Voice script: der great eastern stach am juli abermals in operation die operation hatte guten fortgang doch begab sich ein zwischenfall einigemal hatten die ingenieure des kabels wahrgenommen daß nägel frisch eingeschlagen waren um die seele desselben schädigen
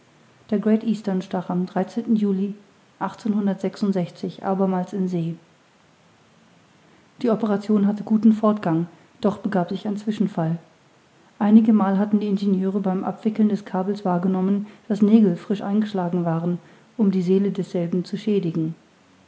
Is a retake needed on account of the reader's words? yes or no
yes